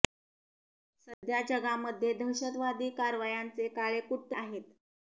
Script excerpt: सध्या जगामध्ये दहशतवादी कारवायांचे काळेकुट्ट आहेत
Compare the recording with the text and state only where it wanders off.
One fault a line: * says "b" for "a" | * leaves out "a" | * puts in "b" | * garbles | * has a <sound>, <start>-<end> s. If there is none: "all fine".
* has a dropout, 1.1-1.2 s